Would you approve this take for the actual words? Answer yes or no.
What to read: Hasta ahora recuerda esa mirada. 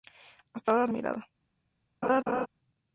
no